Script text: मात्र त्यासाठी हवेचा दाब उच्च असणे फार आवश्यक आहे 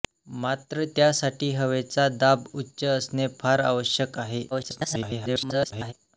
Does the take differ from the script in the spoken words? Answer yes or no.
yes